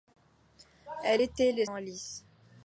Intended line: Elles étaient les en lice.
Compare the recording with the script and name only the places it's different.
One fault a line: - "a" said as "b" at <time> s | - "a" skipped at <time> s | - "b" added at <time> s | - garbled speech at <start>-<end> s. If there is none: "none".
none